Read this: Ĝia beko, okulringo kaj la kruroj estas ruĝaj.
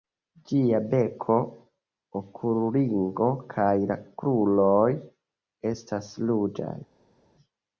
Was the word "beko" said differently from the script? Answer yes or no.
no